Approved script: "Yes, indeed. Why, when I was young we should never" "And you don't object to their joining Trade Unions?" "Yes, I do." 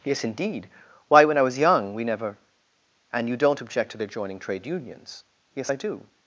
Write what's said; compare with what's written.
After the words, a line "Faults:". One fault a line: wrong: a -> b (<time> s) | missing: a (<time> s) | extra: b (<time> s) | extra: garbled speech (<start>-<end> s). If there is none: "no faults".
"Yes, indeed. Why, when I was young we never" "And you don't object to their joining Trade Unions?" "Yes, I do."
Faults:
missing: should (2.0 s)